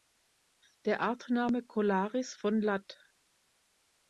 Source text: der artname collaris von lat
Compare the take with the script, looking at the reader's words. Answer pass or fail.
pass